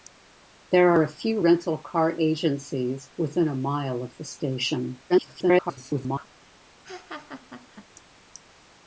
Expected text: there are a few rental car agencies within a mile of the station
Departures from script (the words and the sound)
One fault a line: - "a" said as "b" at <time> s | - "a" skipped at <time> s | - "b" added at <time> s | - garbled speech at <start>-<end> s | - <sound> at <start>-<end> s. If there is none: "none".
- garbled speech at 5.1-6.3 s
- laugh at 6.8-7.8 s